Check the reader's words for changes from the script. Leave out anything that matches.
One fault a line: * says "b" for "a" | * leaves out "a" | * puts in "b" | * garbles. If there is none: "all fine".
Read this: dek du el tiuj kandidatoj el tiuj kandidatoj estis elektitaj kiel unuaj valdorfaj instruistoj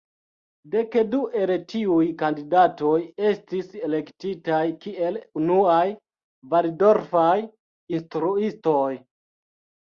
* leaves out "el tiuj kandidatoj"